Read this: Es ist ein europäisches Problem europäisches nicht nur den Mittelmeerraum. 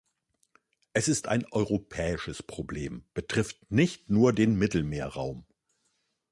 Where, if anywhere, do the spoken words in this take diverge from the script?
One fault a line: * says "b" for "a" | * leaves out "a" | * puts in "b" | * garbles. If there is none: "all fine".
* says "betrifft" for "europäisches"